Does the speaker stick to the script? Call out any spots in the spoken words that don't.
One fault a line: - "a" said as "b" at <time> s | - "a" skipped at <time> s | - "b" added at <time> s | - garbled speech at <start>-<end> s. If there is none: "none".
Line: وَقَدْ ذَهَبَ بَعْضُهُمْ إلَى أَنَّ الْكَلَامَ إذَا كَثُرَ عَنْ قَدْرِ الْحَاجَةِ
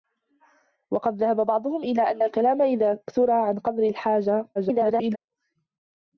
- garbled speech at 4.5-5.2 s